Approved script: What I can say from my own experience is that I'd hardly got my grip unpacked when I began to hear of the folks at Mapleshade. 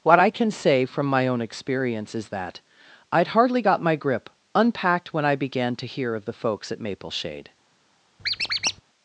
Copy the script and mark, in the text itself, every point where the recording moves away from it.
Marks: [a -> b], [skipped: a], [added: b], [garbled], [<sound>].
What I can say from my own experience is that I'd hardly got my grip unpacked when I began to hear of the folks at Mapleshade. [squeak]